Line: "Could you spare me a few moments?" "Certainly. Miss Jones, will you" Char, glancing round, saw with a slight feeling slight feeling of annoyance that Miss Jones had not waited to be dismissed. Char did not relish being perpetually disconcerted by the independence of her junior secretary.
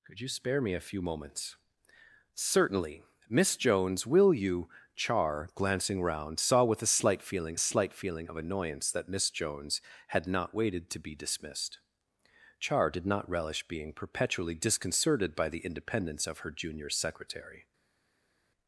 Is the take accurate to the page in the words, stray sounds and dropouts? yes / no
yes